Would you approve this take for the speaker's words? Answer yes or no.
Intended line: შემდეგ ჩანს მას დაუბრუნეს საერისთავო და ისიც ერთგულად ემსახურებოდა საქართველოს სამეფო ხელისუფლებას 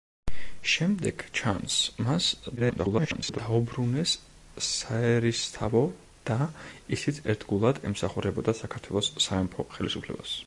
no